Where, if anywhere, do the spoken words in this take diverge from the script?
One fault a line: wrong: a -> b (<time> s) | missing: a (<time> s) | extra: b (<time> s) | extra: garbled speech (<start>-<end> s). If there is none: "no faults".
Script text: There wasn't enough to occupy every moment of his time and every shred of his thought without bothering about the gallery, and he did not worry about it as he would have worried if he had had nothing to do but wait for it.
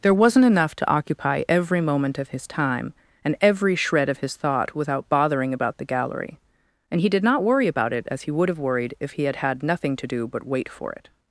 no faults